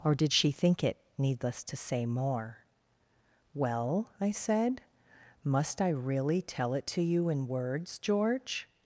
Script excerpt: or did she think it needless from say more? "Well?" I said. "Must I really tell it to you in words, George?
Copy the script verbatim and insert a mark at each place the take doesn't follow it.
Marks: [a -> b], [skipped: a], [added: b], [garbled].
or did she think it needless [from -> to] say more? "Well?" I said. "Must I really tell it to you in words, George?